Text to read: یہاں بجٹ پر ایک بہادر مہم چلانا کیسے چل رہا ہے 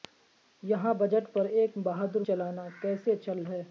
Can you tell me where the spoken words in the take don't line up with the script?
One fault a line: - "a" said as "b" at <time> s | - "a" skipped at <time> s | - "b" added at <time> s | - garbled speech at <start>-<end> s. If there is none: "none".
- "مہم" skipped at 2.2 s
- "رہا" skipped at 3.4 s